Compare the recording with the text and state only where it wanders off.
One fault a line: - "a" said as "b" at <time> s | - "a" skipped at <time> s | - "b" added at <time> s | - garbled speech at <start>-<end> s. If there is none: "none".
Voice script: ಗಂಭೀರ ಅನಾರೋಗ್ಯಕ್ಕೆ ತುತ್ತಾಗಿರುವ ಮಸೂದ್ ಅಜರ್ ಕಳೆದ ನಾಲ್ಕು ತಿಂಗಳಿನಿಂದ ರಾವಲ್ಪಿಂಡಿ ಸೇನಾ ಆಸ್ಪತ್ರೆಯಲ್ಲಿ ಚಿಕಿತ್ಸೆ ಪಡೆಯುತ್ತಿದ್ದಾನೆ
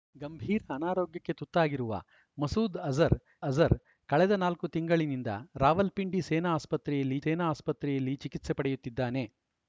- "ಅಜರ್" added at 3.4 s
- "ಸೇನಾ ಆಸ್ಪತ್ರೆಯಲ್ಲಿ" added at 7.2 s